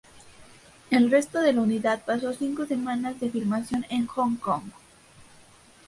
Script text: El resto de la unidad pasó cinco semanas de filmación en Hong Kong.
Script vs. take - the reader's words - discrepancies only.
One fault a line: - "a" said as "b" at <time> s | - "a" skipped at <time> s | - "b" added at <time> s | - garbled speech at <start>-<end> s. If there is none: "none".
none